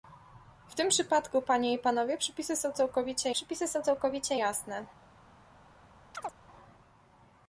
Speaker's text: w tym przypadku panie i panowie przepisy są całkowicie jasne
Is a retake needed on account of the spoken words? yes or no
yes